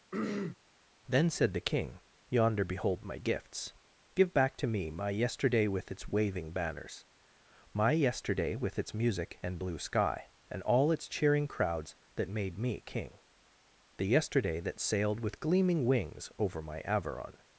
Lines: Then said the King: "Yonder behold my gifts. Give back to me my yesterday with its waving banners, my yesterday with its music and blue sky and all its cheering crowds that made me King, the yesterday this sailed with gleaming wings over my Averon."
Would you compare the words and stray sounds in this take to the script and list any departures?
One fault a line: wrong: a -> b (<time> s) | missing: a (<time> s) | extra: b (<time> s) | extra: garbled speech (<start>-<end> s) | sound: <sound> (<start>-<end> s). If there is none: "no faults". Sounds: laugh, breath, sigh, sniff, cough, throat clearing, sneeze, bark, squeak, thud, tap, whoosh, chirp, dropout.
sound: throat clearing (0.1-0.6 s)
wrong: this -> that (14.6 s)